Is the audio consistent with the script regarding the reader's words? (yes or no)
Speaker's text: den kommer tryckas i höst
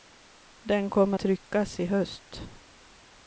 yes